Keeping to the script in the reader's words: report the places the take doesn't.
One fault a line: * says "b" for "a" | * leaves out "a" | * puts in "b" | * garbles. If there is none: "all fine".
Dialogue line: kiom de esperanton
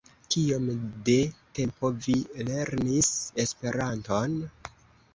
* puts in "tempo vi lernis"